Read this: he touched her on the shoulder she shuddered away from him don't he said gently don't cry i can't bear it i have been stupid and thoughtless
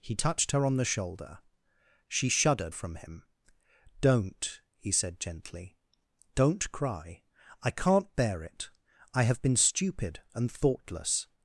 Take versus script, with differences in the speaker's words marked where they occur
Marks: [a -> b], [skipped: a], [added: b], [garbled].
he touched her on the shoulder she shuddered [skipped: away] from him don't he said gently don't cry i can't bear it i have been stupid and thoughtless